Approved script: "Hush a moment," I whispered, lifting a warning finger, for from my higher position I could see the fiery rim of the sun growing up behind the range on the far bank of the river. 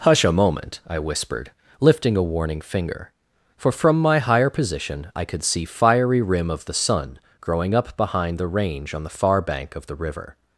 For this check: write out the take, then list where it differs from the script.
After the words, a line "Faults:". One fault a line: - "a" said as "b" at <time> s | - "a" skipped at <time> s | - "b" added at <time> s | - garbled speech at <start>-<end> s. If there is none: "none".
"Hush a moment," I whispered, lifting a warning finger, for from my higher position I could see fiery rim of the sun growing up behind the range on the far bank of the river.
Faults:
- "the" skipped at 5.6 s